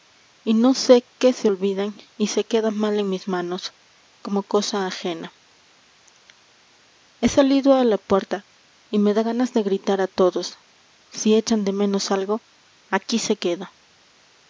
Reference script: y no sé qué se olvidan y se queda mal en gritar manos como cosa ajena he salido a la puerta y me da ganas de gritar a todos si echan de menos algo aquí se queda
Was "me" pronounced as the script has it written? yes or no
yes